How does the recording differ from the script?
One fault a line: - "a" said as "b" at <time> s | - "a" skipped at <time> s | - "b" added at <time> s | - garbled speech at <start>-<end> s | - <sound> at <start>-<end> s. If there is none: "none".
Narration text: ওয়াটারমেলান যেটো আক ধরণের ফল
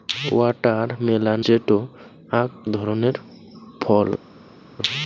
none